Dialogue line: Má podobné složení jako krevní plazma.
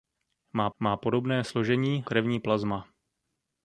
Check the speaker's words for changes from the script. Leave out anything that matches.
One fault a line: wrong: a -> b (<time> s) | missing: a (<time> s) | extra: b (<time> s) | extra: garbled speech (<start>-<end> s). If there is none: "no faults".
extra: má (0.8 s)
missing: jako (2.1 s)